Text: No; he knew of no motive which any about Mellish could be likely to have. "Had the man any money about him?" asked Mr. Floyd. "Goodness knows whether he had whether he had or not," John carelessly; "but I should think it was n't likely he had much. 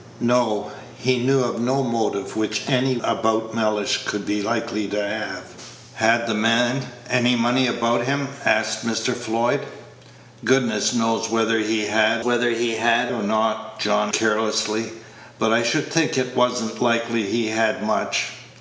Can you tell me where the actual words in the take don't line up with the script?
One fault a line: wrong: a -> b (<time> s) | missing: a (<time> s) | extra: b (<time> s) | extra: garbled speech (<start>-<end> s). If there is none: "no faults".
no faults